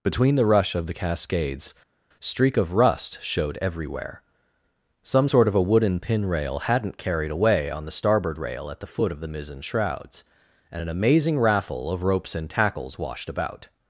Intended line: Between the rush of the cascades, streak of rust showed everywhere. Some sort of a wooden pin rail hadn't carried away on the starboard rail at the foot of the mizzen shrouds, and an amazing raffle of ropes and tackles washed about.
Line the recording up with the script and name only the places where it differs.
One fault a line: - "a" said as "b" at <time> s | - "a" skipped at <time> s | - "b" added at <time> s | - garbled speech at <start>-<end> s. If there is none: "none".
none